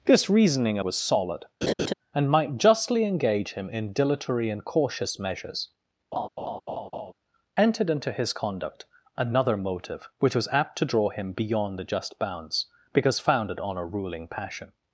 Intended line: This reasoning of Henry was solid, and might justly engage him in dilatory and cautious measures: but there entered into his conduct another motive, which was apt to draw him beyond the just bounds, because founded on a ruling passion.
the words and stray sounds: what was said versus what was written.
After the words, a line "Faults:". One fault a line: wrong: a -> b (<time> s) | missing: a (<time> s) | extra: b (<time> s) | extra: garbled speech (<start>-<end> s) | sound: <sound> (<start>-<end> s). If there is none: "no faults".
This reasoning was solid, and might justly engage him in dilatory and cautious measures: entered into his conduct another motive, which was apt to draw him beyond the just bounds, because founded on a ruling passion.
Faults:
missing: of Henry (0.8 s)
sound: laugh (1.6-1.9 s)
missing: but there (5.7 s)
sound: laugh (6.1-7.1 s)